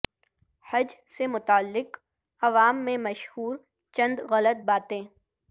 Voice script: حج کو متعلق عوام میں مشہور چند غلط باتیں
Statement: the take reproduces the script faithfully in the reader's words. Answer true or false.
false